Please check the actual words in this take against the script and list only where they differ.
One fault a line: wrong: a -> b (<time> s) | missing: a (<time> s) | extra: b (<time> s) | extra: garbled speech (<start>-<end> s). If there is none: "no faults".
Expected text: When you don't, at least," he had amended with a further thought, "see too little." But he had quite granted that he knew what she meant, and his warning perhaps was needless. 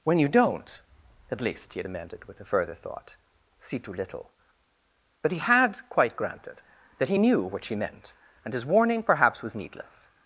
no faults